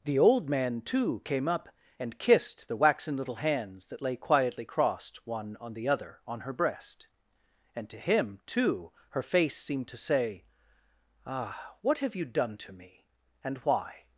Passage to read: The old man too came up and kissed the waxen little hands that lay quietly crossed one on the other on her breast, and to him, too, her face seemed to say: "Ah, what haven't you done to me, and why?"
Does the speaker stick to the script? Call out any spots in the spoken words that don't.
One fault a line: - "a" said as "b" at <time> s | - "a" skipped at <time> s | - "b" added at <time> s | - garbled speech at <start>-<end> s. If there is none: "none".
- "haven't" said as "have" at 12.0 s